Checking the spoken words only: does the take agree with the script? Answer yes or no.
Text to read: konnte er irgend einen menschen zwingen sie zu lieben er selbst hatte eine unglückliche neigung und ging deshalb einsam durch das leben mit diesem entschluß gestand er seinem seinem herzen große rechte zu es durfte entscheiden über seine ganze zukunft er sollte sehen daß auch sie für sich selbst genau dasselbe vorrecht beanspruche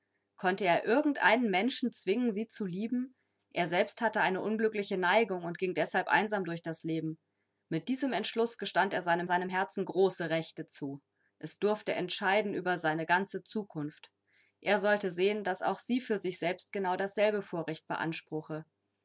yes